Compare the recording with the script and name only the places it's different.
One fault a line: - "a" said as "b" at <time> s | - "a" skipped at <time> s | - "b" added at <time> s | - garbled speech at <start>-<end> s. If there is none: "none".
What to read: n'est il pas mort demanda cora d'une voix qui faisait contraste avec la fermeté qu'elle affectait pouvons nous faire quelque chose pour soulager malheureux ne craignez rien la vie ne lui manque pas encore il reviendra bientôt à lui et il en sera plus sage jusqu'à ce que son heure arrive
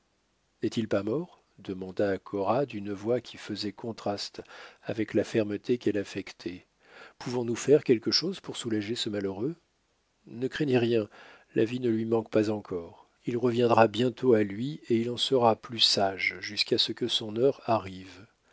- "ce" added at 8.9 s